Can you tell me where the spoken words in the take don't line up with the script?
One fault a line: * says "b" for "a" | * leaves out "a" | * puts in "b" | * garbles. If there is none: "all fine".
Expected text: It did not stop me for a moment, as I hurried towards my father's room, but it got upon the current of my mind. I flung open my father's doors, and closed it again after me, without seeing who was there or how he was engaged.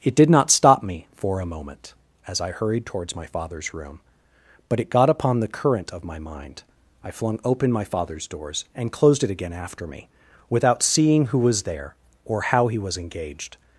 all fine